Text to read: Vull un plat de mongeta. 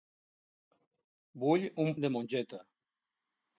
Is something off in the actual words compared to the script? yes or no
yes